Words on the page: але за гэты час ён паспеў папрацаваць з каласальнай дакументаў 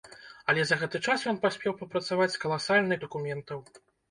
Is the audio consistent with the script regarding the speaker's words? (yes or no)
yes